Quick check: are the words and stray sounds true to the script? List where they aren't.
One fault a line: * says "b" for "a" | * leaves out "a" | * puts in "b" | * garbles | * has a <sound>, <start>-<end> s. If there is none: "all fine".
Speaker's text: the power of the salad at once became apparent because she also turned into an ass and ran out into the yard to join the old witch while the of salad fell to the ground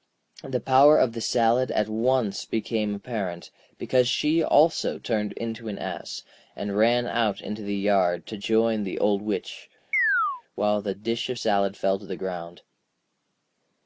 * has a chirp, 9.9-10.4 s
* puts in "dish"